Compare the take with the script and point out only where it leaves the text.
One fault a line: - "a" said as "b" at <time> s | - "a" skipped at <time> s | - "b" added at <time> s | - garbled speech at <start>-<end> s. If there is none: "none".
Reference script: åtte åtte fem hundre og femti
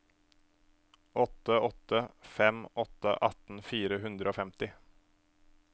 - "åtte atten fire" added at 2.7 s